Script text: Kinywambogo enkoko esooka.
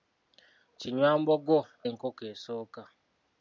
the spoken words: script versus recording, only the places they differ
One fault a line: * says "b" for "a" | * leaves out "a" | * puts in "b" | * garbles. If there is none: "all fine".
all fine